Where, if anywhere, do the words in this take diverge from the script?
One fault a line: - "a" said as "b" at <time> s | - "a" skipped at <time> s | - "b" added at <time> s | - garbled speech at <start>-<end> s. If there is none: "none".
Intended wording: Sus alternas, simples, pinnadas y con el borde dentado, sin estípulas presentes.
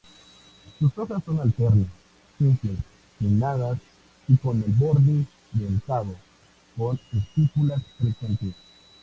- "hojas son" added at 1.0 s
- "sin" said as "con" at 6.8 s